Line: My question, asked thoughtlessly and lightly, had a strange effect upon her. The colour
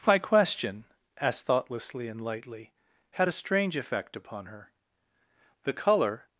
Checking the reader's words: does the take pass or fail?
pass